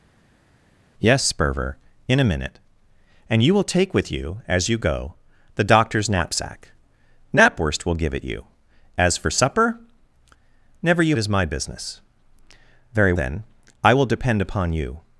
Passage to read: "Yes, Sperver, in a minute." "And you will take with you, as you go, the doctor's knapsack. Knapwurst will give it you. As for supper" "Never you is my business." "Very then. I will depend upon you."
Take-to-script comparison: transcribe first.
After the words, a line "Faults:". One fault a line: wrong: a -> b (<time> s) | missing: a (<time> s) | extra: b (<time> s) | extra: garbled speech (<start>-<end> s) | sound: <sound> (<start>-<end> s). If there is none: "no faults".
"Yes, Sperver, in a minute." "And you will take with you, as you go, the doctor's knapsack. Knapwurst will give it you. As for supper" "Never you is my business." "Very then. I will depend upon you."
Faults:
no faults